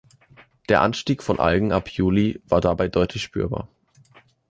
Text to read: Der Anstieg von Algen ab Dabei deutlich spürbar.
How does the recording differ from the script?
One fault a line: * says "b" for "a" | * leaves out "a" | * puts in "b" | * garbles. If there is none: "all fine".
* puts in "Juli war"